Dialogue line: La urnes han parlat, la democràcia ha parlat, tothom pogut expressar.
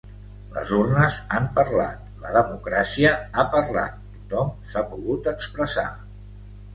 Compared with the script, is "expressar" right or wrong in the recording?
right